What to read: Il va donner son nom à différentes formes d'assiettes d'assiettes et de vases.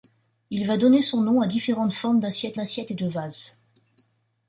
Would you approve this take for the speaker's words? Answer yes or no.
yes